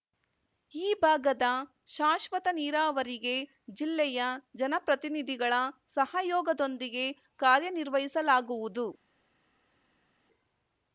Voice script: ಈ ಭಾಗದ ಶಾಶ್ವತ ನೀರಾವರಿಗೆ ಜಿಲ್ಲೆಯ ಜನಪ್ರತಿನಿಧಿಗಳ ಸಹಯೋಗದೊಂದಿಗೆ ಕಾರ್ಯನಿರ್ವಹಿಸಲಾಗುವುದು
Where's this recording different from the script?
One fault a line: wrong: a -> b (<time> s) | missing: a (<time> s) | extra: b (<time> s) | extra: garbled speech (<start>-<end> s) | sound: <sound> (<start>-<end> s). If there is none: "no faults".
no faults